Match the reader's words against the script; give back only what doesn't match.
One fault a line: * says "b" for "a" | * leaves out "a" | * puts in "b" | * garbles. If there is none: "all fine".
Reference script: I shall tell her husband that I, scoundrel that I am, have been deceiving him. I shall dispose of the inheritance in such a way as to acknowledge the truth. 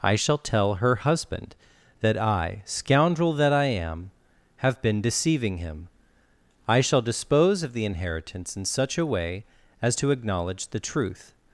all fine